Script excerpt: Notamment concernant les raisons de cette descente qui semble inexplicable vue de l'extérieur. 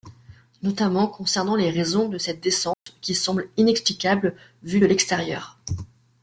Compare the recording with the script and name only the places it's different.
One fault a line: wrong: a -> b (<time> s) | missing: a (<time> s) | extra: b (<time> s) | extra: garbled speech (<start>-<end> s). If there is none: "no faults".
no faults